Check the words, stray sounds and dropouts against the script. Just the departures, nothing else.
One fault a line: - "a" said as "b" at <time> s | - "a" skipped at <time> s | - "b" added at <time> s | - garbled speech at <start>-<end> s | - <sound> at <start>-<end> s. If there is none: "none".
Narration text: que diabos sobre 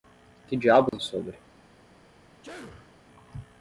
- dropout at 0.9-0.9 s
- sneeze at 2.4-2.9 s